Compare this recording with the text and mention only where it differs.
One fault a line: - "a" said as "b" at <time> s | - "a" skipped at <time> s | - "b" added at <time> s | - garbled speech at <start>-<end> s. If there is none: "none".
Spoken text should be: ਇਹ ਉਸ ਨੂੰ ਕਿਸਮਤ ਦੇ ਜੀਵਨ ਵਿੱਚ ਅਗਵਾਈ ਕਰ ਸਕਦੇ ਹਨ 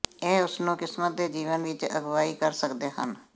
none